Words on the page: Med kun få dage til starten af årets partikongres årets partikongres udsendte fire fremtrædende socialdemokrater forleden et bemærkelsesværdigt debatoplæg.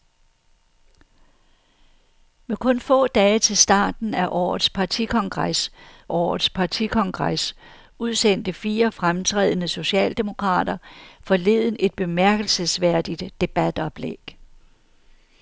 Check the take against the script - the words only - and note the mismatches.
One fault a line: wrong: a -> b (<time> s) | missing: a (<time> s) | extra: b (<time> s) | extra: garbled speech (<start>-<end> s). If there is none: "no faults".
no faults